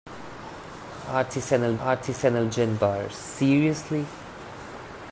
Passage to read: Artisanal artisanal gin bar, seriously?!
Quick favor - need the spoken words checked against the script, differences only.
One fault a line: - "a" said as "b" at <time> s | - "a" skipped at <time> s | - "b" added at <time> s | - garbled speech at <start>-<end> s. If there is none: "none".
none